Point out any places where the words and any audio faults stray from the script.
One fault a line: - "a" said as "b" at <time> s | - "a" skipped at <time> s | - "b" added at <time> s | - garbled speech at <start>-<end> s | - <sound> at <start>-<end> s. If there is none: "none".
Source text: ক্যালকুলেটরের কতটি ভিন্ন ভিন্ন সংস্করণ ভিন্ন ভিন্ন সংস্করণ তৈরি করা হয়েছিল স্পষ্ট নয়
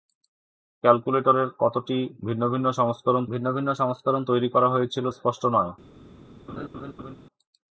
- laugh at 6.5-7.2 s